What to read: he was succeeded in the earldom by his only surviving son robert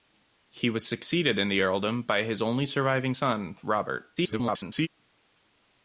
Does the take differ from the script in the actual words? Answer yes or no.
yes